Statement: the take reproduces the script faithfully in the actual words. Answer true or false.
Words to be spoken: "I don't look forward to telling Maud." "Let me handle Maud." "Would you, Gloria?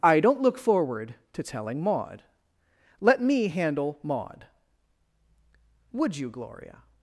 true